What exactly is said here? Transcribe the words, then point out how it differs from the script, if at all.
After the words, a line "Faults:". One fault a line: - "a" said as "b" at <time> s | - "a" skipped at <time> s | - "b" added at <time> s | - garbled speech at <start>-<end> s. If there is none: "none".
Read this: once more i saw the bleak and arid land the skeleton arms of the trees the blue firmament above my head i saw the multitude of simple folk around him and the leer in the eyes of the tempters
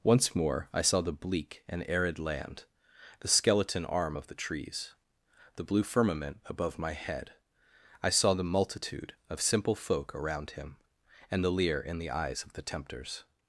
once more i saw the bleak and arid land the skeleton arm of the trees the blue firmament above my head i saw the multitude of simple folk around him and the leer in the eyes of the tempters
Faults:
- "arms" said as "arm" at 3.9 s